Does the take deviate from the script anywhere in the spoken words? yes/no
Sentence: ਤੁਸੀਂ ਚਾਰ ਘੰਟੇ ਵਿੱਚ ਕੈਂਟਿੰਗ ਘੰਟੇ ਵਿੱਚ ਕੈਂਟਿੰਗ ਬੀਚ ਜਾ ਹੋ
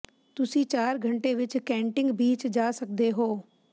yes